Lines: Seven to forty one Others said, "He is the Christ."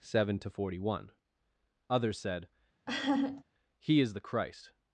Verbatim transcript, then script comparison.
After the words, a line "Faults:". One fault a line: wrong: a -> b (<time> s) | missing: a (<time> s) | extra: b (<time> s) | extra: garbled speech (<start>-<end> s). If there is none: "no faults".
Seven to forty one Others said, "He is the Christ."
Faults:
no faults